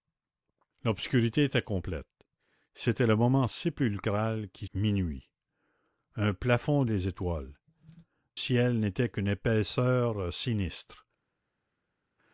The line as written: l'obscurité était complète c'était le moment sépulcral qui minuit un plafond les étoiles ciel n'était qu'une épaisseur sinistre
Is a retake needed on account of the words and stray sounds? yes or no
no